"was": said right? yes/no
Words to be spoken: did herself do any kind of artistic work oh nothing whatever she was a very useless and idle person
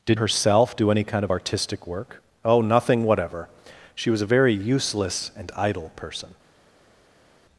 yes